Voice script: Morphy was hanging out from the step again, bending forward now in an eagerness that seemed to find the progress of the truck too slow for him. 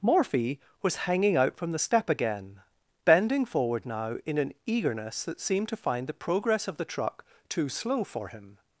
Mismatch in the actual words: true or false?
false